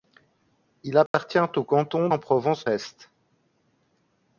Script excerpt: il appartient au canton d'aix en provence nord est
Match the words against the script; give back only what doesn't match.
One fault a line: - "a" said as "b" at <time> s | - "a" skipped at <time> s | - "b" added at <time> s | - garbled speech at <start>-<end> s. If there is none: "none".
- "d'aix" skipped at 2.1 s
- "nord" skipped at 2.7 s